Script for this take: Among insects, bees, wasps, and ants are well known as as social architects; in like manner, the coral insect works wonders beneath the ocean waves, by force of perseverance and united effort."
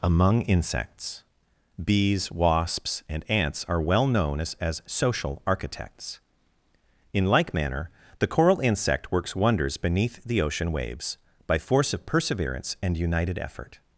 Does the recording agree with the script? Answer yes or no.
yes